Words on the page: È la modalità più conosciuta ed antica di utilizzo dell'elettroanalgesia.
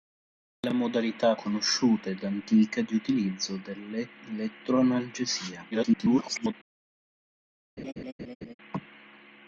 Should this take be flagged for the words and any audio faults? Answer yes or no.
yes